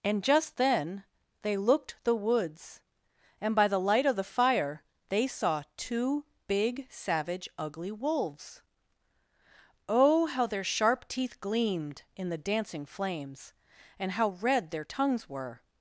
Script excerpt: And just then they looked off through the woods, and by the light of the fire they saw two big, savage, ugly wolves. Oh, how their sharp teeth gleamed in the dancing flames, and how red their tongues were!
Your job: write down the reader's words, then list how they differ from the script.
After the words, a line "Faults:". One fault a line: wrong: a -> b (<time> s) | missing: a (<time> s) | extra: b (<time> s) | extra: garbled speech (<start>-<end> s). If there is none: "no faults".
And just then they looked the woods, and by the light of the fire they saw two big, savage, ugly wolves. Oh, how their sharp teeth gleamed in the dancing flames, and how red their tongues were!
Faults:
missing: off through (2.0 s)